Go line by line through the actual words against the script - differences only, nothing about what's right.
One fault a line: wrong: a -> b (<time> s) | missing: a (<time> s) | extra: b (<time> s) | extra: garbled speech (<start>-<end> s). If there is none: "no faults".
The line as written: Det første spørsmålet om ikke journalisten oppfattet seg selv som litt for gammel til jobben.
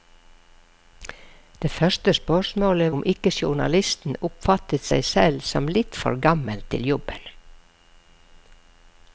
no faults